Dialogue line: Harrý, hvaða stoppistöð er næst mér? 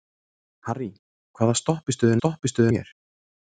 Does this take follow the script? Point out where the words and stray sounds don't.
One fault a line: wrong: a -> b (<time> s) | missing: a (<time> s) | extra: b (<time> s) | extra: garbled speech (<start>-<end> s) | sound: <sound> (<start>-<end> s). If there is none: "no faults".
wrong: næst -> stoppistöð (2.2 s)